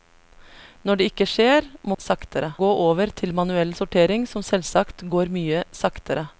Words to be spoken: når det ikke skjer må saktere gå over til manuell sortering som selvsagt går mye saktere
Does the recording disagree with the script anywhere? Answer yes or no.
no